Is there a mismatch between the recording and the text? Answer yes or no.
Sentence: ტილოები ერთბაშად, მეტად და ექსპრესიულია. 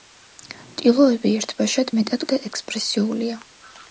no